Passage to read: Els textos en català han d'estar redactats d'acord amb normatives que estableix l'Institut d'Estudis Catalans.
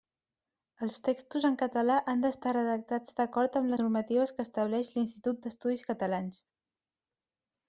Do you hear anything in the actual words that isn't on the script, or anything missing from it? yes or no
no